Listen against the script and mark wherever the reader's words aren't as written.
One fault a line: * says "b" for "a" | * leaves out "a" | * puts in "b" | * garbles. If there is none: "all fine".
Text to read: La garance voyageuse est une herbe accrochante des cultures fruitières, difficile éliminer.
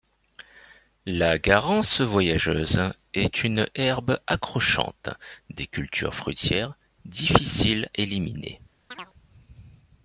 all fine